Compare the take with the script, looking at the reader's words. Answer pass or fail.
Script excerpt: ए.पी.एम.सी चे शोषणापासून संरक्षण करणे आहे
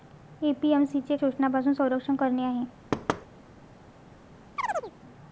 pass